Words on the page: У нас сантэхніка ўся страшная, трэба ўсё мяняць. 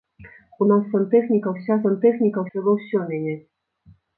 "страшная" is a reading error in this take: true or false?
true